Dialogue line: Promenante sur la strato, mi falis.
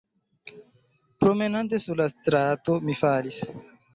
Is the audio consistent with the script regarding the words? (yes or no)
yes